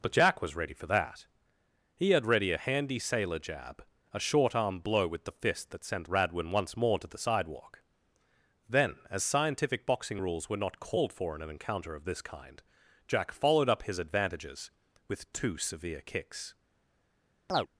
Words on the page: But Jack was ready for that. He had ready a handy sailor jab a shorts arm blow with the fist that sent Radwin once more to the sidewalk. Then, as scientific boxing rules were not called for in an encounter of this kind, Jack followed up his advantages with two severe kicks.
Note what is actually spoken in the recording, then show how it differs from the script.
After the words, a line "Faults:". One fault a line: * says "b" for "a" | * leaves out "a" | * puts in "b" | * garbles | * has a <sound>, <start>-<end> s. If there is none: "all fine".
But Jack was ready for that. He had ready a handy sailor jab a short arm blow with the fist that sent Radwin once more to the sidewalk. Then, as scientific boxing rules were not called for in an encounter of this kind, Jack followed up his advantages with two severe kicks.
Faults:
* says "short" for "shorts"
* has a chirp, 17.5-17.7 s